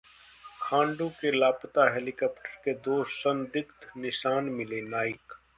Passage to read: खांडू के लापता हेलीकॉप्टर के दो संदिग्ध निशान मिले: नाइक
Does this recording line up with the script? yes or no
yes